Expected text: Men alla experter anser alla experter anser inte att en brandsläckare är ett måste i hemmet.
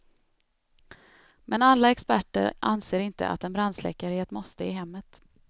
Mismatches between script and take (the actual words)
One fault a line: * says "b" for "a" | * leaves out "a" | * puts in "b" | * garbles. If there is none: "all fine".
* leaves out "alla experter anser"